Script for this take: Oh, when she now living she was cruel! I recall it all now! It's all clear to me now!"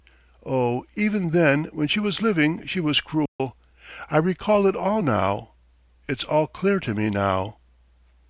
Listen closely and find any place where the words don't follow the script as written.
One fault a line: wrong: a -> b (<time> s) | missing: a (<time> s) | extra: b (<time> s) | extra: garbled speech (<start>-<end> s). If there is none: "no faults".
extra: even then (0.9 s)
wrong: now -> was (2.0 s)